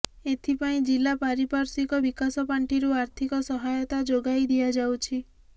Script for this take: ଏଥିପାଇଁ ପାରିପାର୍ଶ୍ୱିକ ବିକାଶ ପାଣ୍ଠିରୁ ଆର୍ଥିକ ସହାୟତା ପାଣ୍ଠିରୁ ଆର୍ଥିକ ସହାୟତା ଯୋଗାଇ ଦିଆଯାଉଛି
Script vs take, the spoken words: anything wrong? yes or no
yes